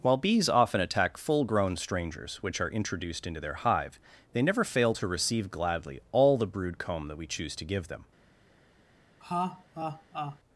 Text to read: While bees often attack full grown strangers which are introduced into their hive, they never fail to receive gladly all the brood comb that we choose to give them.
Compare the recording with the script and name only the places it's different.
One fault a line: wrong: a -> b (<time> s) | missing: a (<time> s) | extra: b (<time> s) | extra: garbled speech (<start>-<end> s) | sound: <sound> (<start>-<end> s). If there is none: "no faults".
sound: laugh (9.2-10.4 s)